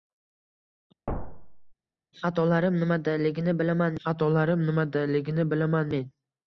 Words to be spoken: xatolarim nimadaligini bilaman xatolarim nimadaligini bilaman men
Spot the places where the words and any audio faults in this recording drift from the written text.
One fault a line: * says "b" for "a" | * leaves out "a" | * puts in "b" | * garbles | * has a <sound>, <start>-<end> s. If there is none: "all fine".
* has a thud, 1.1-1.7 s